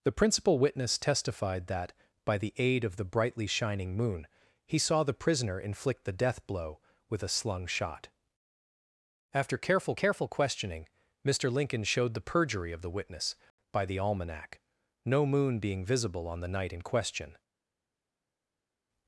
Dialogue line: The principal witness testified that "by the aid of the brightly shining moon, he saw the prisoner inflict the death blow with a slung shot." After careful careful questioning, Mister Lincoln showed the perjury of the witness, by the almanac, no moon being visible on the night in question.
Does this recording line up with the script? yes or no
yes